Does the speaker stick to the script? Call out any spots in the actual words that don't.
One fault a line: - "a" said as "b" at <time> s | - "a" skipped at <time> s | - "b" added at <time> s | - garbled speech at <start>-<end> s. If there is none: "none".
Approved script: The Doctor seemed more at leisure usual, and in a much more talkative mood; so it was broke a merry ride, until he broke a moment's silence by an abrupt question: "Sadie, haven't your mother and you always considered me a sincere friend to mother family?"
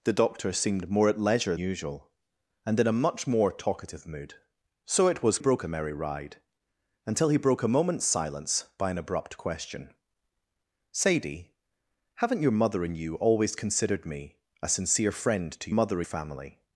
none